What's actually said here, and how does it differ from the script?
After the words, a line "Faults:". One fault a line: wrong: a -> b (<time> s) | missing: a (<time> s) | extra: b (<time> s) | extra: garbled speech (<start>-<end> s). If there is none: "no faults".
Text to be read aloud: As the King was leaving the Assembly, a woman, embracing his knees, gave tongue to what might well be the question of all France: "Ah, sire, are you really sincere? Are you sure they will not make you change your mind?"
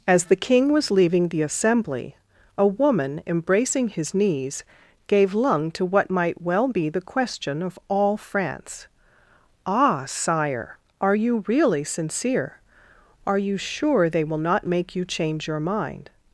As the King was leaving the Assembly, a woman, embracing his knees, gave lung to what might well be the question of all France: "Ah, sire, are you really sincere? Are you sure they will not make you change your mind?"
Faults:
wrong: tongue -> lung (5.3 s)